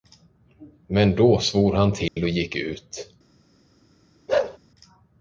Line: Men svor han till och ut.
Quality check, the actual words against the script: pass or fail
fail